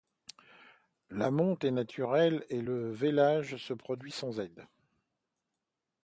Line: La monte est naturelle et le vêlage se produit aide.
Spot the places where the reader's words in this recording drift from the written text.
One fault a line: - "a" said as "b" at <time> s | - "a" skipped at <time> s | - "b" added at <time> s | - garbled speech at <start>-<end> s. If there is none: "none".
- "sans" added at 4.1 s